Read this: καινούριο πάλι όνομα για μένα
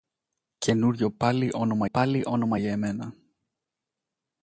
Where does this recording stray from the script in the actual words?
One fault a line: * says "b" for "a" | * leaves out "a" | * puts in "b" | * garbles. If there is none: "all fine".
* puts in "πάλι όνομα"